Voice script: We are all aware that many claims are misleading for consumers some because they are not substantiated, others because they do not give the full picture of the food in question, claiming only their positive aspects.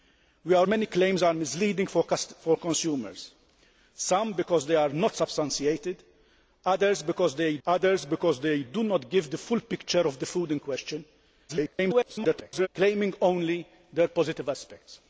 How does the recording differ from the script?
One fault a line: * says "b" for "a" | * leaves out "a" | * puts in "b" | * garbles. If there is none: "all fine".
* leaves out "all aware that"
* puts in "others because they"
* garbles